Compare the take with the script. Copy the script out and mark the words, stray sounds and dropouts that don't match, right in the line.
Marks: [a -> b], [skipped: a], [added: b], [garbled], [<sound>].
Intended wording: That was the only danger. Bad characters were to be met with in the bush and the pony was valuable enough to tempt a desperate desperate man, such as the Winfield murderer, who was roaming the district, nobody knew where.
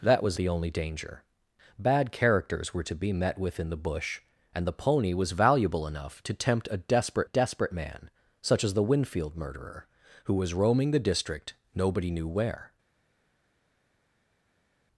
That was the only danger. Bad characters were to be met with in the bush and the pony was valuable enough to tempt a desperate desperate man, such as the Winfield murderer, who was roaming the district, nobody knew where.